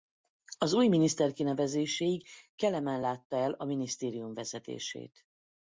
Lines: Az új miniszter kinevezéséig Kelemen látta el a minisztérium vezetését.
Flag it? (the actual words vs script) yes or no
no